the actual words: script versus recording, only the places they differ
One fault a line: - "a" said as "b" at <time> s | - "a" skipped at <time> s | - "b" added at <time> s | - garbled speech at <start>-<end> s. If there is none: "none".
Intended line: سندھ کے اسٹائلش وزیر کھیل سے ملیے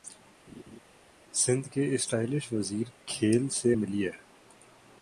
none